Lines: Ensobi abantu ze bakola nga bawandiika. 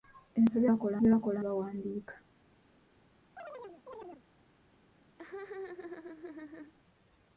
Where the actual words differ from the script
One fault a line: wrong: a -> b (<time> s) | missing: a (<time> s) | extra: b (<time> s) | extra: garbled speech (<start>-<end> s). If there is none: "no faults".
wrong: abantu -> bakola (0.7 s)
missing: nga (1.4 s)